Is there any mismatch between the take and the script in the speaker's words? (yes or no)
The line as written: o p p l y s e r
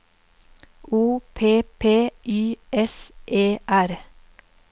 yes